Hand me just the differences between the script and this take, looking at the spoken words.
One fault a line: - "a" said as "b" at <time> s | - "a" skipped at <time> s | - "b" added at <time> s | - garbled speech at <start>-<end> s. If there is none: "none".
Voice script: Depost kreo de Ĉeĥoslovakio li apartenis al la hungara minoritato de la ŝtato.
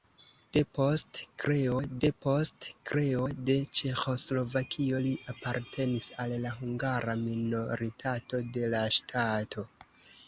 - "depost kreo" added at 2.0 s